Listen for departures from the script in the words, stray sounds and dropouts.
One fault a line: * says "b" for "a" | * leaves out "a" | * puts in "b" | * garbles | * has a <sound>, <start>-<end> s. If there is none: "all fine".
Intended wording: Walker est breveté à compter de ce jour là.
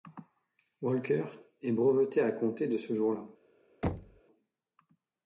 * has a thud, 3.8-4.2 s